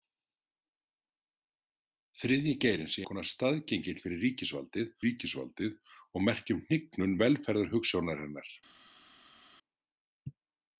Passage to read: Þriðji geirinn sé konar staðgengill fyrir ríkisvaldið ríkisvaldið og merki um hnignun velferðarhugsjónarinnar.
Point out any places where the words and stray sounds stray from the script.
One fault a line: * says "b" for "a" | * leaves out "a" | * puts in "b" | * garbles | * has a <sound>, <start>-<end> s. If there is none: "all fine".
all fine